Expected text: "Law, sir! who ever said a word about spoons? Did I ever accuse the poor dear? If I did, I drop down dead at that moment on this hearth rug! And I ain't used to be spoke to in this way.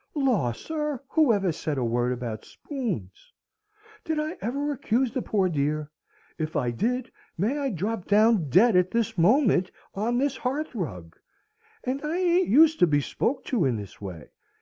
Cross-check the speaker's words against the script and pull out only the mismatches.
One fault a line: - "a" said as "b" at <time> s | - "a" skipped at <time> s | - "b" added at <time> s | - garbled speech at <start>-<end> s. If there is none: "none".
- "may" added at 7.4 s
- "that" said as "this" at 8.9 s